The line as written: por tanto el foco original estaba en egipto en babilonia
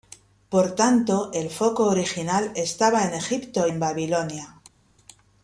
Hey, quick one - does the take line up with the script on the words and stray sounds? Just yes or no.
yes